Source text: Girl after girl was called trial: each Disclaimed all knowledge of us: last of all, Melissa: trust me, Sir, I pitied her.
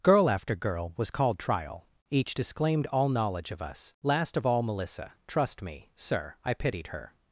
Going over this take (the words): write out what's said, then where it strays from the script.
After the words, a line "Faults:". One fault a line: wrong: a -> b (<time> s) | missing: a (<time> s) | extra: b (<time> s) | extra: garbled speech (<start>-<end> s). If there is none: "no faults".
Girl after girl was called trial: each Disclaimed all knowledge of us: last of all, Melissa: trust me, Sir, I pitied her.
Faults:
no faults